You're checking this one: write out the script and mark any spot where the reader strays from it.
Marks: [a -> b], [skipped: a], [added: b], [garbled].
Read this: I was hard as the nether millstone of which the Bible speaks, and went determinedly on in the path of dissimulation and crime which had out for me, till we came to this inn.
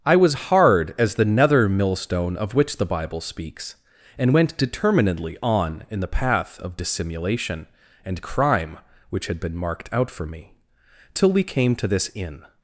I was hard as the nether millstone of which the Bible speaks, and went determinedly on in the path of dissimulation and crime which had [added: been marked] out for me, till we came to this inn.